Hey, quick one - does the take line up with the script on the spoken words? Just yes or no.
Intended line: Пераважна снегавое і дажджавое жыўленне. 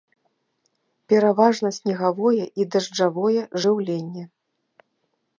yes